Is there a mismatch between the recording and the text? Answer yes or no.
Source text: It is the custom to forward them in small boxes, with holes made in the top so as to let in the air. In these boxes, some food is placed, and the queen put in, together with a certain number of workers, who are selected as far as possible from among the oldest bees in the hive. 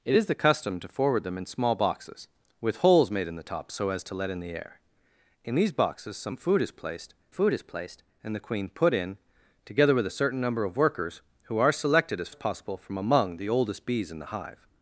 yes